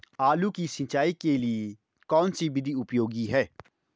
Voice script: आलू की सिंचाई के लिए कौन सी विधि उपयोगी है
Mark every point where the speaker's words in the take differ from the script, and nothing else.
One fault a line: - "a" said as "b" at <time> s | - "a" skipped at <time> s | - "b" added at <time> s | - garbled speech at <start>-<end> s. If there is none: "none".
none